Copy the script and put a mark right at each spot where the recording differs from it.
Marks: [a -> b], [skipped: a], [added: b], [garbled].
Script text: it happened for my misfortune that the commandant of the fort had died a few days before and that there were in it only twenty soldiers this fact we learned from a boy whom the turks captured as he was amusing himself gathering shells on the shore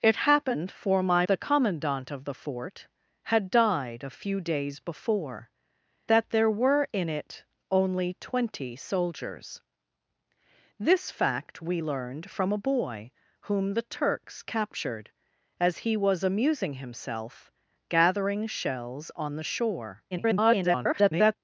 it happened for my [skipped: misfortune that] the commandant of the fort had died a few days before [skipped: and] that there were in it only twenty soldiers this fact we learned from a boy whom the turks captured as he was amusing himself gathering shells on the shore [garbled]